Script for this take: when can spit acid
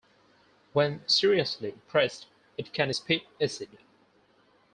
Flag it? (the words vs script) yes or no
yes